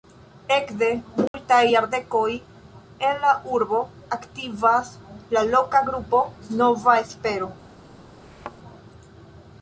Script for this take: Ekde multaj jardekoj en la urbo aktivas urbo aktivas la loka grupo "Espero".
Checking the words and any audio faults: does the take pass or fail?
fail